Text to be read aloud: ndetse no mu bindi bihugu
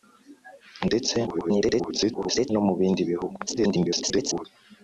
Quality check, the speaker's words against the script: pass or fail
fail